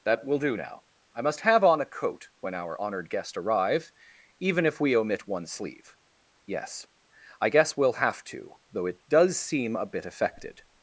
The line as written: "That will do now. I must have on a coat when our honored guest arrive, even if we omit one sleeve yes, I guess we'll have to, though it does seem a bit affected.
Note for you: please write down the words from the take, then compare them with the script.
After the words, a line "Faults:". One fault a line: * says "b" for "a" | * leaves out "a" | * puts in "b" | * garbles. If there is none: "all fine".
"That will do now. I must have on a coat when our honored guest arrive, even if we omit one sleeve yes, I guess we'll have to, though it does seem a bit affected.
Faults:
all fine